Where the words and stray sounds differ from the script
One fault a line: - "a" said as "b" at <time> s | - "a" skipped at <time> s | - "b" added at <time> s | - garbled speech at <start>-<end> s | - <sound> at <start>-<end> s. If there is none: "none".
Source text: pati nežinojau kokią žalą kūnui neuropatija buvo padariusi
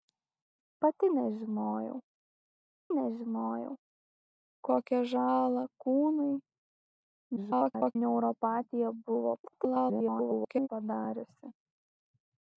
- "nežinojau" added at 3.0 s
- garbled speech at 7.4-8.0 s
- garbled speech at 9.4-10.7 s